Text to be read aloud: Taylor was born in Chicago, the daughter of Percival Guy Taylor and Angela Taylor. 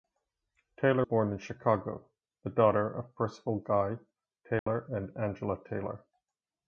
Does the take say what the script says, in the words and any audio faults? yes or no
no